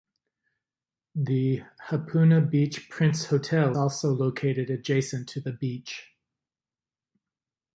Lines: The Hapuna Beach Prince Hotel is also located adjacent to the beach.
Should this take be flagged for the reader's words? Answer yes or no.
yes